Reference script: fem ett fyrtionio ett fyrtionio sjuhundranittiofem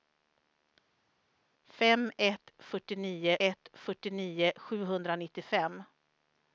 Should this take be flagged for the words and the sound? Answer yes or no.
no